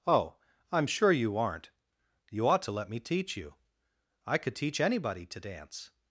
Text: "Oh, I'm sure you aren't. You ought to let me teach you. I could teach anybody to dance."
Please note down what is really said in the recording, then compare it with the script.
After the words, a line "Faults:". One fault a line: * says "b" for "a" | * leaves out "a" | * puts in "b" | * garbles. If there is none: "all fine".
"Oh, I'm sure you aren't. You ought to let me teach you. I could teach anybody to dance."
Faults:
all fine